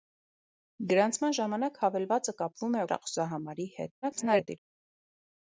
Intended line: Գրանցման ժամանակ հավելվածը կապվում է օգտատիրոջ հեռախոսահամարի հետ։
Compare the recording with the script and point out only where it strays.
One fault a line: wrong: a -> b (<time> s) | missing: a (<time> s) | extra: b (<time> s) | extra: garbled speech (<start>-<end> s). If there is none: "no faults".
missing: օգտատիրոջ (2.8 s)
extra: garbled speech (4.0-4.6 s)